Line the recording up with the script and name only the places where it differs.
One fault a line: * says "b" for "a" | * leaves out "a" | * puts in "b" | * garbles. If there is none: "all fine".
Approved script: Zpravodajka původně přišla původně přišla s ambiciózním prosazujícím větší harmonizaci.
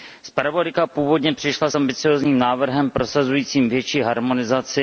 * leaves out "původně přišla"
* puts in "návrhem"